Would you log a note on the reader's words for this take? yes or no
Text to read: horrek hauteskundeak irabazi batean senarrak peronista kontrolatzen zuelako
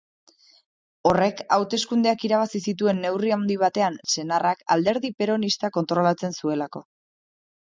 yes